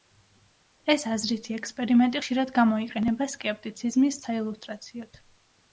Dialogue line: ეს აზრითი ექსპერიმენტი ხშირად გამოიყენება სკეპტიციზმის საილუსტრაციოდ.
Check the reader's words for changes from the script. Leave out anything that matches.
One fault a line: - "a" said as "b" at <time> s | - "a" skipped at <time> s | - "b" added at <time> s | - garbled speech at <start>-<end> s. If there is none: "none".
none